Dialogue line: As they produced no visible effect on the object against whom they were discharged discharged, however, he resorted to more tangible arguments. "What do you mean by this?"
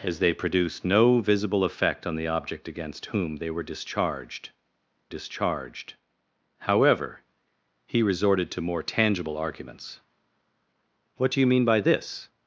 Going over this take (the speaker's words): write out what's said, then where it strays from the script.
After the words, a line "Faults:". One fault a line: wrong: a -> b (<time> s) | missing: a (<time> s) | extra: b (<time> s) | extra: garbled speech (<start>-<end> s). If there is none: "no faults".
As they produced no visible effect on the object against whom they were discharged discharged, however, he resorted to more tangible arguments. "What do you mean by this?"
Faults:
no faults